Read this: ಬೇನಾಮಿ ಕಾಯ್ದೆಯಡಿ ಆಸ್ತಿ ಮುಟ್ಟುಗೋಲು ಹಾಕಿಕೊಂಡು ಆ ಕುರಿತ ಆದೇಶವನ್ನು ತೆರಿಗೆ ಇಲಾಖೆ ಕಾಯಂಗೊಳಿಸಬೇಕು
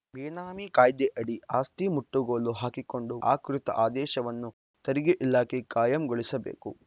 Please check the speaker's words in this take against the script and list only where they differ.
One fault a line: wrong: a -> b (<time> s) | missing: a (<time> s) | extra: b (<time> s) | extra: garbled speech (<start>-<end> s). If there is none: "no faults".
no faults